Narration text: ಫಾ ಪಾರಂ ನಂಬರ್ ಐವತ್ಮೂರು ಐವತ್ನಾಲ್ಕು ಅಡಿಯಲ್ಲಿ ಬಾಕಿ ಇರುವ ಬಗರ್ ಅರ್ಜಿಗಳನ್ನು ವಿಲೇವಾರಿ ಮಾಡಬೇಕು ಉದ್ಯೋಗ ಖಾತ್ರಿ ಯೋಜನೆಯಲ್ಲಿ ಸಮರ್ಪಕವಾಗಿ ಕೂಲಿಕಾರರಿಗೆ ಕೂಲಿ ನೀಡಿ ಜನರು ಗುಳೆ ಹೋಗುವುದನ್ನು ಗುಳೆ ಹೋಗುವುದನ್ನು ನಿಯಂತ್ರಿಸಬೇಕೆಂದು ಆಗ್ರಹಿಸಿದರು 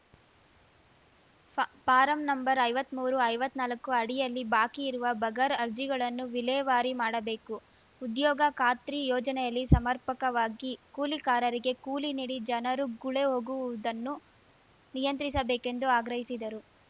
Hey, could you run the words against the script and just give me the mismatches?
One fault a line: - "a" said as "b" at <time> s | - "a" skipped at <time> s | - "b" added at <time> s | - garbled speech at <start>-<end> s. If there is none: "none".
- "ಗುಳೆ ಹೋಗುವುದನ್ನು" skipped at 14.2 s